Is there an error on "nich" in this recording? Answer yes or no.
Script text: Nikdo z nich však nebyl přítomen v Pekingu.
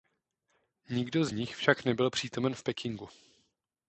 no